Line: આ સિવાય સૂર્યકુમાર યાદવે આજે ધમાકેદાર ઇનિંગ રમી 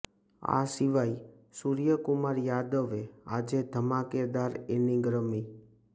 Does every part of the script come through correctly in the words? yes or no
yes